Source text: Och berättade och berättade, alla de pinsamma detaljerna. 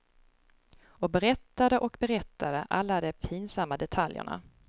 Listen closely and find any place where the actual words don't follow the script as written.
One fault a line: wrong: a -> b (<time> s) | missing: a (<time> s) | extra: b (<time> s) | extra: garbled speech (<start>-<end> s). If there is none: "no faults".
no faults